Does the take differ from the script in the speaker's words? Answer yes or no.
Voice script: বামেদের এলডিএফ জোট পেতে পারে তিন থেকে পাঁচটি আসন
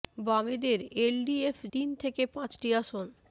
yes